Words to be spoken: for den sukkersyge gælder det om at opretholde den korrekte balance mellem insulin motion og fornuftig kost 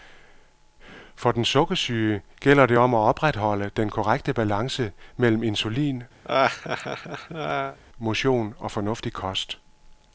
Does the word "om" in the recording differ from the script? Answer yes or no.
no